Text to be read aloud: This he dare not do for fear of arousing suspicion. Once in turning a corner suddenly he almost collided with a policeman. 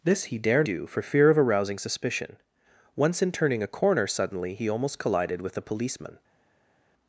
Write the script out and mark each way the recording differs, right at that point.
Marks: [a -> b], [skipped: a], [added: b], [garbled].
This he dare [skipped: not] do for fear of arousing suspicion. Once in turning a corner suddenly he almost collided with a policeman.